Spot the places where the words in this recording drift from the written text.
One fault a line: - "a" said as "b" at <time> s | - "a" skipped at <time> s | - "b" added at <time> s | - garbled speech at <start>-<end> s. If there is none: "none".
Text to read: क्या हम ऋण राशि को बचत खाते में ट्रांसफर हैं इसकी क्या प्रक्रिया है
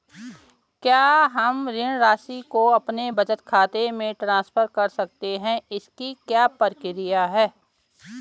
- "अपने" added at 2.7 s
- "कर सकते" added at 4.7 s